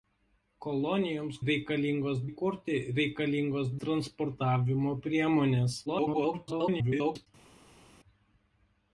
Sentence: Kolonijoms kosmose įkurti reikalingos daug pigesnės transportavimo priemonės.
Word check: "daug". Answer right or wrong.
wrong